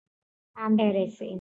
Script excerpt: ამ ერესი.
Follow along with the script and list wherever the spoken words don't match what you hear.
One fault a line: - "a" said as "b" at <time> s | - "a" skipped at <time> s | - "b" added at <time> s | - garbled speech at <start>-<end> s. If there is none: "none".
none